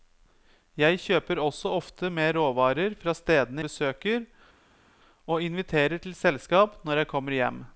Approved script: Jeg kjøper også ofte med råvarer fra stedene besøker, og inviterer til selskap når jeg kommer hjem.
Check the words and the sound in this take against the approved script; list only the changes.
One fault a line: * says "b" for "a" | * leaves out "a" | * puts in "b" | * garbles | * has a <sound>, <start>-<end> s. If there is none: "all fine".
all fine